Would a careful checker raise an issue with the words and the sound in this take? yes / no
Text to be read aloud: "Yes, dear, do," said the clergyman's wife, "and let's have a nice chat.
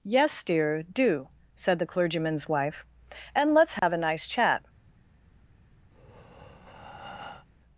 yes